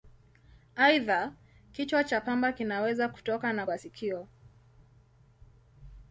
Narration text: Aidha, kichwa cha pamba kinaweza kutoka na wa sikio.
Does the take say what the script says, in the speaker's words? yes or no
yes